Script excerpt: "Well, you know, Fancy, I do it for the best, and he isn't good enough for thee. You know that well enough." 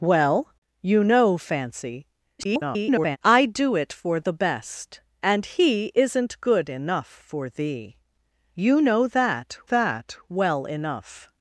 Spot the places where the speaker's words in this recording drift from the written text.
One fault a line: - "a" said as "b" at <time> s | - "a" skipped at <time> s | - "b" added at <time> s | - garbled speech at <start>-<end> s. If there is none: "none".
- garbled speech at 2.4-3.2 s
- "that" added at 9.6 s